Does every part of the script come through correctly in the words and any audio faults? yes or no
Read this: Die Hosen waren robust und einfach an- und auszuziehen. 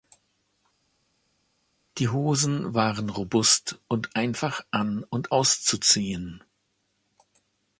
yes